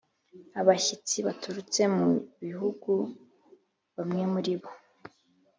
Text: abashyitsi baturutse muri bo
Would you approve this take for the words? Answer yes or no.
no